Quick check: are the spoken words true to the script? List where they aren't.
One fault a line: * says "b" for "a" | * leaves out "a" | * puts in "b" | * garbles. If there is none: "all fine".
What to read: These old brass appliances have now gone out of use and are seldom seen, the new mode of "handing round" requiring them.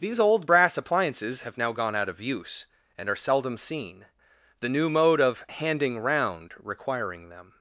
all fine